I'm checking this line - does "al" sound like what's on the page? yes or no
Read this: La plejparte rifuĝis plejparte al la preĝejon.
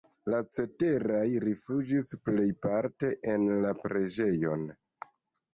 no